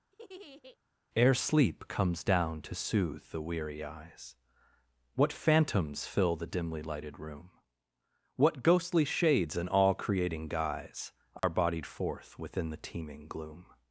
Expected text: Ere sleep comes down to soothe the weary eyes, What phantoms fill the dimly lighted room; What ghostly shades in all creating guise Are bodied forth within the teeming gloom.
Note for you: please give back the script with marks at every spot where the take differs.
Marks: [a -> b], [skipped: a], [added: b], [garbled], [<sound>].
[laugh] Ere sleep comes down to soothe the weary eyes, What phantoms fill the dimly lighted room; What ghostly shades in all creating guise Are [dropout] bodied forth within the teeming gloom.